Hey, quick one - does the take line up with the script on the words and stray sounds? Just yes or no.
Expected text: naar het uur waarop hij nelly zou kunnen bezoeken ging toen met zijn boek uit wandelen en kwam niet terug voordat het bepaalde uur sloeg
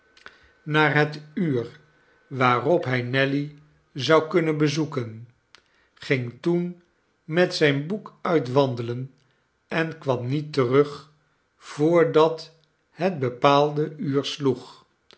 yes